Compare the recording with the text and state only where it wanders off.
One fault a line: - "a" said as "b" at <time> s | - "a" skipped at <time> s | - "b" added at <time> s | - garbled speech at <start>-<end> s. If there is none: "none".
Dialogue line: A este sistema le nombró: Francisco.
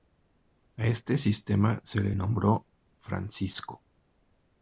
- "se" added at 1.8 s